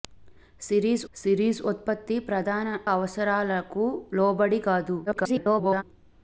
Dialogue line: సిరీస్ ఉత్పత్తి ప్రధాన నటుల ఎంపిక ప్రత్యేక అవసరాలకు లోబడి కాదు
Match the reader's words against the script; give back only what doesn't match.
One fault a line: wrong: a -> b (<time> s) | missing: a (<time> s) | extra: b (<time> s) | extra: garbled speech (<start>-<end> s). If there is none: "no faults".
extra: సిరీస్ (1.2 s)
missing: నటుల ఎంపిక ప్రత్యేక (2.7 s)
extra: garbled speech (5.1-5.8 s)